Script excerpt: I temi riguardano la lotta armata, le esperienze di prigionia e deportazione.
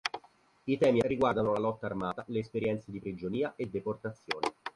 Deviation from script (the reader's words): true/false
false